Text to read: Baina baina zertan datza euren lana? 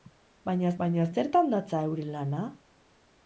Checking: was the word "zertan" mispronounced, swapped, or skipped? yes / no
no